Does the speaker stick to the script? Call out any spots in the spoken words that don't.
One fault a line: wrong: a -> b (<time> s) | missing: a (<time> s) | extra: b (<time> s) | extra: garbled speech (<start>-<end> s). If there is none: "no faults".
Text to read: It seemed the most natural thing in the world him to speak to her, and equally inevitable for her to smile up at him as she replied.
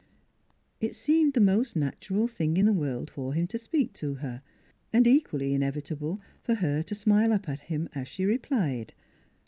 extra: for (3.1 s)